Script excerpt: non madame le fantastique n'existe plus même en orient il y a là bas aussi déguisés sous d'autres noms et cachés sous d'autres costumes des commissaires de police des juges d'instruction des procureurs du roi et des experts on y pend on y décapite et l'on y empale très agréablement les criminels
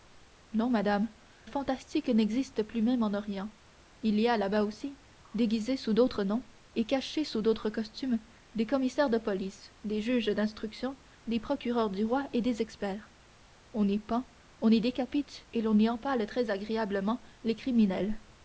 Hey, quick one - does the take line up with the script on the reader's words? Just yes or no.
no